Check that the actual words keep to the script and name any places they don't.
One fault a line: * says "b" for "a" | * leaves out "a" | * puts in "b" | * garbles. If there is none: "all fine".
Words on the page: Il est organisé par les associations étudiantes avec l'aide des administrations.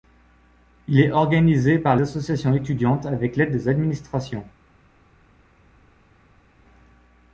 * leaves out "les"